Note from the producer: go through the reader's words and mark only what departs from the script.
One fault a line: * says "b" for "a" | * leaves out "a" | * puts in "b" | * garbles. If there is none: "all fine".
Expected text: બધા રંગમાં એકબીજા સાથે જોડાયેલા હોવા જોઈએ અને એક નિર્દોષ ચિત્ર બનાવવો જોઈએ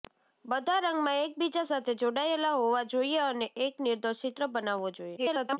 * garbles